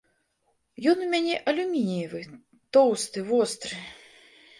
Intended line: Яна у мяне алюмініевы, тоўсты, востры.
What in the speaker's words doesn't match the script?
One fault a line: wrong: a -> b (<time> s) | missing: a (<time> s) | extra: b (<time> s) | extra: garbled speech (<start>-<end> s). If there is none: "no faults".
wrong: Яна -> Ён (0.9 s)